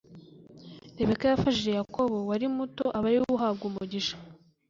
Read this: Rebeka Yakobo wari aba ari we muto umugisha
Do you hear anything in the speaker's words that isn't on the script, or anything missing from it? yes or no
yes